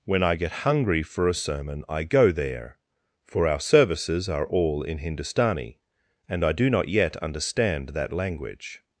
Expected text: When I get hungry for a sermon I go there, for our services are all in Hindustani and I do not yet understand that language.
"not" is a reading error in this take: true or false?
false